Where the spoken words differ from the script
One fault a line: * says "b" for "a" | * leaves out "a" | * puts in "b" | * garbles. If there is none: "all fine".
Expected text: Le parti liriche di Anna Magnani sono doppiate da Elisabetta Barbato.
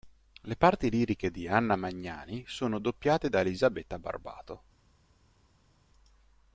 all fine